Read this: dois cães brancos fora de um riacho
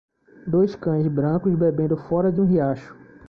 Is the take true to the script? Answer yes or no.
no